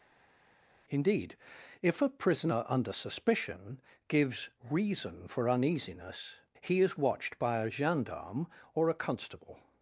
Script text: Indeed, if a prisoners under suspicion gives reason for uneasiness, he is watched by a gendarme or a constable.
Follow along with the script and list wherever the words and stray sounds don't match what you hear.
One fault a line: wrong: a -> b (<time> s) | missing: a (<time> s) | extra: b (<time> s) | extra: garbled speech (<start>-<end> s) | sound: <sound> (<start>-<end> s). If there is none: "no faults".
wrong: prisoners -> prisoner (2.1 s)